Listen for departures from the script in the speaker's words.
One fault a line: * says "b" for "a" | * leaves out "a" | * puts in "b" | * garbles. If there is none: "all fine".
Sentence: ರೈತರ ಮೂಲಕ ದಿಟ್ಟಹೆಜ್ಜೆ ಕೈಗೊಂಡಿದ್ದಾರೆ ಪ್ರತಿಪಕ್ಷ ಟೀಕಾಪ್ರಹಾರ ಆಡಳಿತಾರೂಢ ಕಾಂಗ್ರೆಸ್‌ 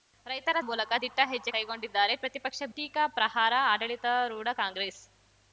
all fine